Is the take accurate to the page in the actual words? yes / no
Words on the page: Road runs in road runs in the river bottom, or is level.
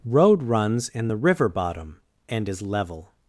no